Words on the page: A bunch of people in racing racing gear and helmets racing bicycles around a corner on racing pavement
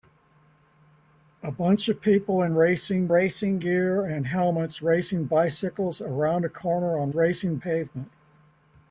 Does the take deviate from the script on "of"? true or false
false